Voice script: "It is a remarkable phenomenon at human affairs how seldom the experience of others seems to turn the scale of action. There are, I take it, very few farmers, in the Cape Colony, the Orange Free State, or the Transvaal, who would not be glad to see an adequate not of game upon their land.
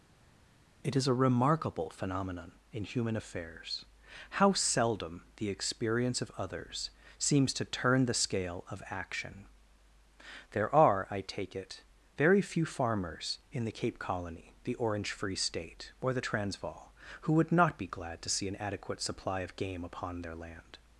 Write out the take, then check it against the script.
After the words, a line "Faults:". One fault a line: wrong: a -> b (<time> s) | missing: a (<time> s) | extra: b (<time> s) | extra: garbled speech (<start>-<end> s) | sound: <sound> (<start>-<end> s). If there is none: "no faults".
"It is a remarkable phenomenon in human affairs how seldom the experience of others seems to turn the scale of action. There are, I take it, very few farmers, in the Cape Colony, the Orange Free State, or the Transvaal, who would not be glad to see an adequate supply of game upon their land.
Faults:
wrong: at -> in (2.7 s)
wrong: not -> supply (19.0 s)